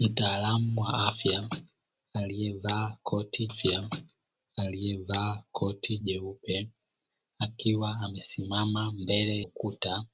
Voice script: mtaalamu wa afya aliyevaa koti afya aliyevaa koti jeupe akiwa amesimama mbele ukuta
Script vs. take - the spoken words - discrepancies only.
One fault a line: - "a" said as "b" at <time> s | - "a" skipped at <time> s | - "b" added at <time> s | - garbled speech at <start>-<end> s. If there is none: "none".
none